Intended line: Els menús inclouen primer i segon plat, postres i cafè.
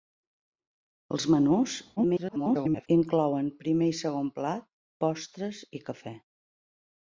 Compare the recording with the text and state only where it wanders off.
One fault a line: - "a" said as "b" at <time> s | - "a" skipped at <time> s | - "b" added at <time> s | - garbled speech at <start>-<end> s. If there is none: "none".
- garbled speech at 2.0-2.9 s